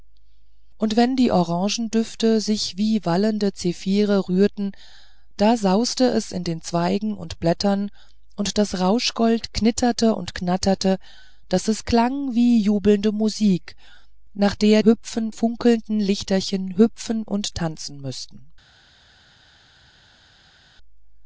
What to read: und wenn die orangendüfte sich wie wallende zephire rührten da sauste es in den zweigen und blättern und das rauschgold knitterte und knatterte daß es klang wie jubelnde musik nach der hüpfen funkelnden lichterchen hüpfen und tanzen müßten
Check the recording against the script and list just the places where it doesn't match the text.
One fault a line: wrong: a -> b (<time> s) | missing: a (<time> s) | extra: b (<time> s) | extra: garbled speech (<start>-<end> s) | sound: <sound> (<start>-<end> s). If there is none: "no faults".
no faults